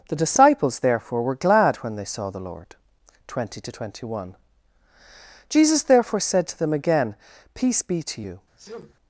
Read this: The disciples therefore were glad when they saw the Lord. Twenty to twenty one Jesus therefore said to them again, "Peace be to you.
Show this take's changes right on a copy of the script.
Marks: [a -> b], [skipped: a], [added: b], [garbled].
The disciples therefore were glad when they saw the Lord. Twenty to twenty one Jesus therefore said to them again, "Peace be to you.